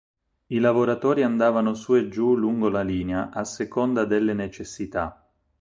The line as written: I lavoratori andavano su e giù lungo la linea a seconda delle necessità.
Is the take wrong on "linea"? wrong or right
right